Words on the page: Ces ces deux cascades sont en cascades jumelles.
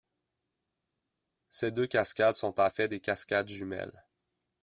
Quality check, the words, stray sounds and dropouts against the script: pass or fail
fail